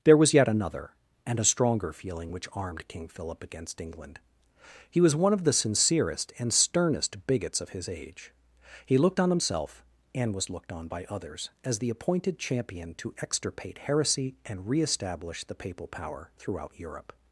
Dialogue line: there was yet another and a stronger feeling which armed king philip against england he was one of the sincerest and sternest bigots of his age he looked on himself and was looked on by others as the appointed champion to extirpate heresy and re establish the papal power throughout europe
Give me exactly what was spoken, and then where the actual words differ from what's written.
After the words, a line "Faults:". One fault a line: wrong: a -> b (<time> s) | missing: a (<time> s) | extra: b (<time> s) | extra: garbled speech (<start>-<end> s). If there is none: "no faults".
there was yet another and a stronger feeling which armed king philip against england he was one of the sincerest and sternest bigots of his age he looked on himself and was looked on by others as the appointed champion to extirpate heresy and re establish the papal power throughout europe
Faults:
no faults